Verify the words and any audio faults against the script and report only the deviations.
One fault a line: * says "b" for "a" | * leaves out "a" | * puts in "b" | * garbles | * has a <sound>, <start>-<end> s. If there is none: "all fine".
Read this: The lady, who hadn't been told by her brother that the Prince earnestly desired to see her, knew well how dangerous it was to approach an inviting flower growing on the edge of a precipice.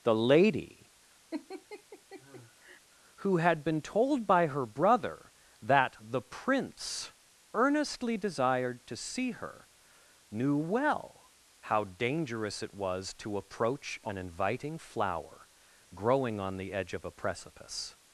* has a laugh, 1.3-2.8 s
* says "had" for "hadn't"